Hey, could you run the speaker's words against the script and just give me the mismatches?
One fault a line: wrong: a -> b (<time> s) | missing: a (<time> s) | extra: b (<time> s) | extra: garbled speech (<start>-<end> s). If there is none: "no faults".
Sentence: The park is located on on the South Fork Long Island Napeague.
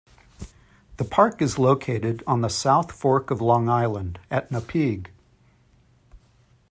missing: on (2.4 s)
extra: of (3.3 s)
extra: at (4.3 s)